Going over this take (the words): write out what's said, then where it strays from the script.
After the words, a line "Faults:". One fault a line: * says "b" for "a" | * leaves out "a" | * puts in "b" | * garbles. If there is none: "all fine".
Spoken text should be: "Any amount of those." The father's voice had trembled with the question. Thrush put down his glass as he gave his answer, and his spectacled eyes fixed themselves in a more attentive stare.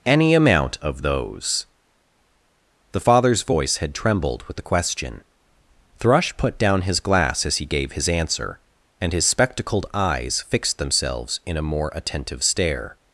"Any amount of those." The father's voice had trembled with the question. Thrush put down his glass as he gave his answer, and his spectacled eyes fixed themselves in a more attentive stare.
Faults:
all fine